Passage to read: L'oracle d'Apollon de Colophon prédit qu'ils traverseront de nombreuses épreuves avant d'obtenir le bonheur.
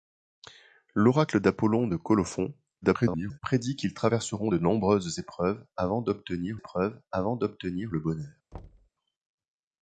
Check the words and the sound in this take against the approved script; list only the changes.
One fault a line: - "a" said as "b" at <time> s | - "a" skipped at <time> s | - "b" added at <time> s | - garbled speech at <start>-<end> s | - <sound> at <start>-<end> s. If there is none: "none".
- garbled speech at 2.8-3.4 s
- "épreuves avant d'obtenir" added at 6.6 s
- thud at 8.5-8.9 s